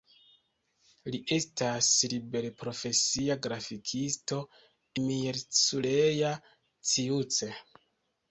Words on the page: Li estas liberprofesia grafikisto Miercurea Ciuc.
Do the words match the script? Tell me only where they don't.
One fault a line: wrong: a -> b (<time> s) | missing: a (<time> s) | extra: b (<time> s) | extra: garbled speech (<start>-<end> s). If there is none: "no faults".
no faults